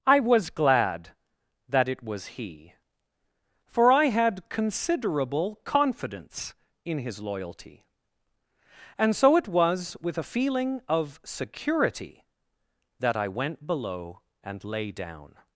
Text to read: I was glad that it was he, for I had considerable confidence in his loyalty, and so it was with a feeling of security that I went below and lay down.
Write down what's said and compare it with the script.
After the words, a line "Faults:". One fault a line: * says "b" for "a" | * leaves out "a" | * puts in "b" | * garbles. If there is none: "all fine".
I was glad that it was he, for I had considerable confidence in his loyalty, and so it was with a feeling of security that I went below and lay down.
Faults:
all fine